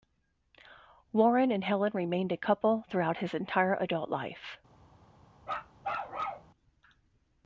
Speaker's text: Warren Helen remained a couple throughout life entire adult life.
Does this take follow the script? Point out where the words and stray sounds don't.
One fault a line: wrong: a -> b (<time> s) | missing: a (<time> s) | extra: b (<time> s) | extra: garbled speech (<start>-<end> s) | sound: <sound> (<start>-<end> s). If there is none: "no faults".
extra: and (1.5 s)
wrong: life -> his (3.2 s)
sound: bark (5.4-6.5 s)